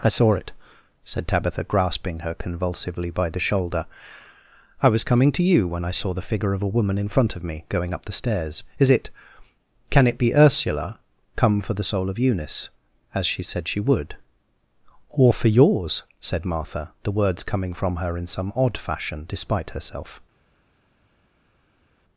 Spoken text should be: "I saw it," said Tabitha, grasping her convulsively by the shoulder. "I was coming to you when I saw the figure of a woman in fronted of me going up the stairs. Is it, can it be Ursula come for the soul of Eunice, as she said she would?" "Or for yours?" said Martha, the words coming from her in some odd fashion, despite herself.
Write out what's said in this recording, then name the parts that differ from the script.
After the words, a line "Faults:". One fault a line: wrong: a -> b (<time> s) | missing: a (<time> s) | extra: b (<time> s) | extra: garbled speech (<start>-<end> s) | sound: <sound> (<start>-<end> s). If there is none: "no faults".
"I saw it," said Tabitha, grasping her convulsively by the shoulder. "I was coming to you when I saw the figure of a woman in front of me going up the stairs. Is it, can it be Ursula come for the soul of Eunice, as she said she would?" "Or for yours?" said Martha, the words coming from her in some odd fashion, despite herself.
Faults:
wrong: fronted -> front (7.1 s)